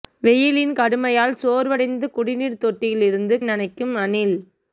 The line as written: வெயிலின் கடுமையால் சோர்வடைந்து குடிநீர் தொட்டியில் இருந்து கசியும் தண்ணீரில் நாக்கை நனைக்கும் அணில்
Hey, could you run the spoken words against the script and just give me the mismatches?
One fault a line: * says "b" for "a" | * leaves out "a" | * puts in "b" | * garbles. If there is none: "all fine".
* leaves out "கசியும் தண்ணீரில் நாக்கை"